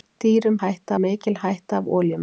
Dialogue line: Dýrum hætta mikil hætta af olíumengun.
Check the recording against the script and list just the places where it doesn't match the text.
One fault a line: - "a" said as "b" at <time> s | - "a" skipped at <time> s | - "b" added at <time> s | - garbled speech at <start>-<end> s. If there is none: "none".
none